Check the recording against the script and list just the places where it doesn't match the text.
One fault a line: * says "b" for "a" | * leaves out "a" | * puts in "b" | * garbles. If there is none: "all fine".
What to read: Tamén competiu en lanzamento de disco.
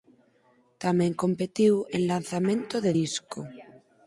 all fine